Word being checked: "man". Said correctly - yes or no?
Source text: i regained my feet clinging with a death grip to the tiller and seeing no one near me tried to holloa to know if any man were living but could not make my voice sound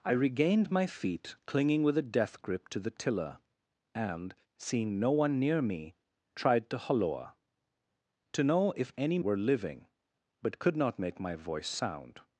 no